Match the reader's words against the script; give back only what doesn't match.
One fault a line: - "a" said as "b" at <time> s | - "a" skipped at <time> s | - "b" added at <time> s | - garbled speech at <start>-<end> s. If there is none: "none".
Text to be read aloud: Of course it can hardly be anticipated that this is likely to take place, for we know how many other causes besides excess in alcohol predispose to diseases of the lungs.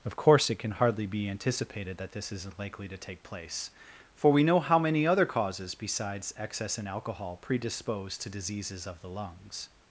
- "is" said as "isn't" at 2.3 s